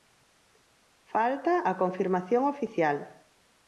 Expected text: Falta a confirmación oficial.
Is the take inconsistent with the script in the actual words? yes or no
no